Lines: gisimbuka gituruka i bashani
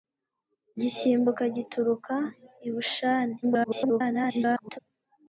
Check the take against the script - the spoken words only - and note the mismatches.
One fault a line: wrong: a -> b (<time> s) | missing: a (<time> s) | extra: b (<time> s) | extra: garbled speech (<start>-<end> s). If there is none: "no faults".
extra: garbled speech (3.4-4.8 s)